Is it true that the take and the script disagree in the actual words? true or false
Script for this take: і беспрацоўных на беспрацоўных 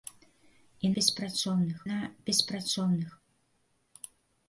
false